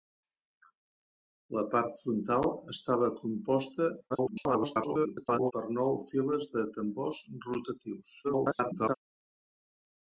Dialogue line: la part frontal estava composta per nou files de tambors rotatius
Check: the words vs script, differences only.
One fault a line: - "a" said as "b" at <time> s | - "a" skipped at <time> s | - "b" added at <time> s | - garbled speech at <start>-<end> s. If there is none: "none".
- garbled speech at 4.1-5.5 s
- garbled speech at 8.2-8.9 s